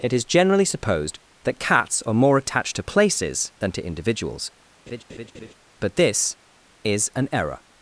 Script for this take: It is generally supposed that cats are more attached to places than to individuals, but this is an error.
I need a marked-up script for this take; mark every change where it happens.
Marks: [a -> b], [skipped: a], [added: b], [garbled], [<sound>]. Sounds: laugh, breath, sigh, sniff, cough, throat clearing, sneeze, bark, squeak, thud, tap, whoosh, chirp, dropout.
It is generally supposed that cats are more attached to places than to individuals, [laugh] but this is an error.